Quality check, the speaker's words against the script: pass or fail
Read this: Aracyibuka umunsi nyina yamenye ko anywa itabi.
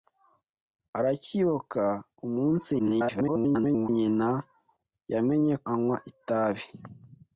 fail